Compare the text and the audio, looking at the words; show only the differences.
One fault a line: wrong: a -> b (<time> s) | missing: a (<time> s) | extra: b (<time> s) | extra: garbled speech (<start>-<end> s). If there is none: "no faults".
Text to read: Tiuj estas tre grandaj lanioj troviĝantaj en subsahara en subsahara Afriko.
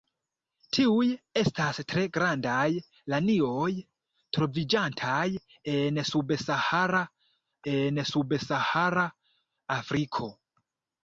no faults